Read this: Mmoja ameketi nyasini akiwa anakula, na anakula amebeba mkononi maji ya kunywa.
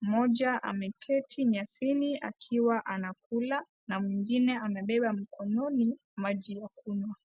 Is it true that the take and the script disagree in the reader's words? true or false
true